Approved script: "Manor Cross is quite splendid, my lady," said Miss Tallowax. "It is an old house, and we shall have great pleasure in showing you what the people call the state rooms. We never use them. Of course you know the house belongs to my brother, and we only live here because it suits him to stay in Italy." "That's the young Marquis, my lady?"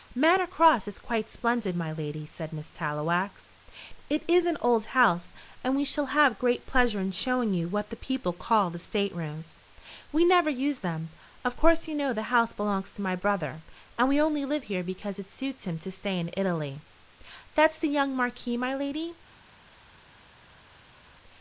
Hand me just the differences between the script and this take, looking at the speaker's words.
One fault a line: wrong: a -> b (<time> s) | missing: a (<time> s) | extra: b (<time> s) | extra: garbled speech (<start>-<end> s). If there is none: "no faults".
no faults